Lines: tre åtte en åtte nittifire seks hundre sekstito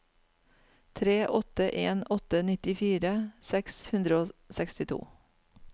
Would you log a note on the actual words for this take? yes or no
yes